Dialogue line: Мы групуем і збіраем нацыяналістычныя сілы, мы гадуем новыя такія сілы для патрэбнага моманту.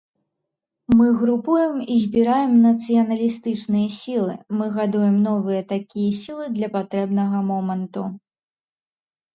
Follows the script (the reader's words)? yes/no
yes